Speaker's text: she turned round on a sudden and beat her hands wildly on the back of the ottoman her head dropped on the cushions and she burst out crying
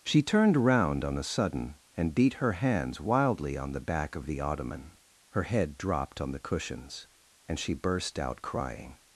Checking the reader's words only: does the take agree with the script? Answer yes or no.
yes